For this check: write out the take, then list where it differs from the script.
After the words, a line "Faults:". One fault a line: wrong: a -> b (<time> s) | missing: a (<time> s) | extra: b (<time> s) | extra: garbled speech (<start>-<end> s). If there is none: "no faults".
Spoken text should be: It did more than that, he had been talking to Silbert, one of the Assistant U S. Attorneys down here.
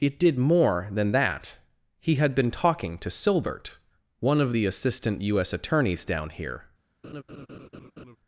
It did more than that, he had been talking to Silbert, one of the Assistant U S. Attorneys down here.
Faults:
no faults